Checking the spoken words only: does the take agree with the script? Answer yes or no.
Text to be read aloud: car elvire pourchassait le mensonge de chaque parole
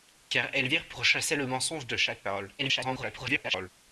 no